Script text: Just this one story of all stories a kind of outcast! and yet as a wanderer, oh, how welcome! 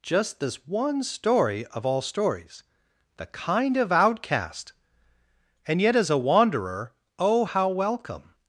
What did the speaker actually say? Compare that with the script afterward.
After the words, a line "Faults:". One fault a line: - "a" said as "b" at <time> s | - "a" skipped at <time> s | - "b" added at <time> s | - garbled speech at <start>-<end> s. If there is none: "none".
Just this one story of all stories the kind of outcast! and yet as a wanderer, oh, how welcome!
Faults:
- "a" said as "the" at 3.2 s